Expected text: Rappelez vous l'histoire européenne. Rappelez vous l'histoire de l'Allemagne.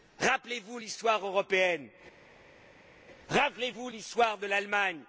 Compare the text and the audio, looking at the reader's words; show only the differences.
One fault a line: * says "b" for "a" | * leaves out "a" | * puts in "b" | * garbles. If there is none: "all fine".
all fine